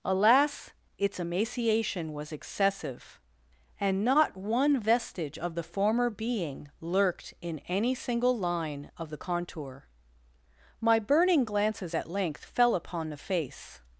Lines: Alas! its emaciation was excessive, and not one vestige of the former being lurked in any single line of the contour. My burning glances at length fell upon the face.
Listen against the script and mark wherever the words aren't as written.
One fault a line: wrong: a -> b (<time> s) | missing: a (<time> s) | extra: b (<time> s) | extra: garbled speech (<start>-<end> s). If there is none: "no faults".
no faults